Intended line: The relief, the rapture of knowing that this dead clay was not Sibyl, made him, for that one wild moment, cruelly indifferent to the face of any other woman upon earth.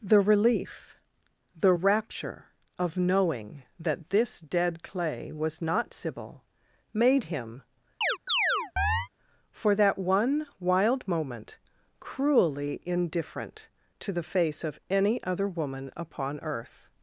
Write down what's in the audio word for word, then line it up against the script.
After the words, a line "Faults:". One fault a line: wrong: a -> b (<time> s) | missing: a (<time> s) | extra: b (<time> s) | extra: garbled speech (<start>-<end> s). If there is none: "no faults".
The relief, the rapture of knowing that this dead clay was not Sibyl, made him, for that one wild moment, cruelly indifferent to the face of any other woman upon earth.
Faults:
no faults